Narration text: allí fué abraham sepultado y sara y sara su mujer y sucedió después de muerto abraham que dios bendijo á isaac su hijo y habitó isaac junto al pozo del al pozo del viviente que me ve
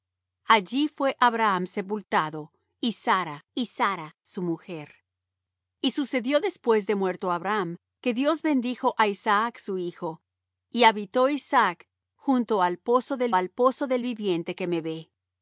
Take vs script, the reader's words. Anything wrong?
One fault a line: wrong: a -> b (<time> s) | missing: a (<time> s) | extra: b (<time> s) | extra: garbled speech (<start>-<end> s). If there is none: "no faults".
no faults